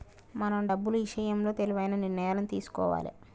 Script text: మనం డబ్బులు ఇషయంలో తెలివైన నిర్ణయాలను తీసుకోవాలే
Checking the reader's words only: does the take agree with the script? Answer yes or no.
yes